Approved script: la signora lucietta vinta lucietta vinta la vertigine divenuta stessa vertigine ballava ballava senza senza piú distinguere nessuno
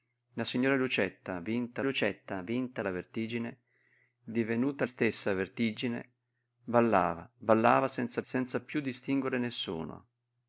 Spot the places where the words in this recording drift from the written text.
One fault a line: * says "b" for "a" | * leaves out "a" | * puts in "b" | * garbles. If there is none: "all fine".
all fine